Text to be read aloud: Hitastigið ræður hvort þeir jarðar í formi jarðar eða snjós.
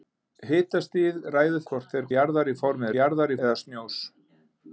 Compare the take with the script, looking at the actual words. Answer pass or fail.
pass